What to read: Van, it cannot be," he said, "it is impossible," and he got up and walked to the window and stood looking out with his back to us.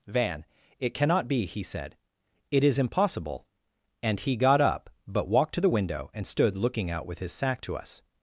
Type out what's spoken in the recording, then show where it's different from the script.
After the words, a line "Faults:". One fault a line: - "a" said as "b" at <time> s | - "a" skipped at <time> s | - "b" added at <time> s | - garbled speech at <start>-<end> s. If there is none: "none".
Van, it cannot be," he said, "it is impossible," and he got up but walked to the window and stood looking out with his sack to us.
Faults:
- "and" said as "but" at 5.1 s
- "back" said as "sack" at 7.3 s